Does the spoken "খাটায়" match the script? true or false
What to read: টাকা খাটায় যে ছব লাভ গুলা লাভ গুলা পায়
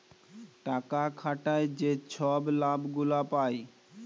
true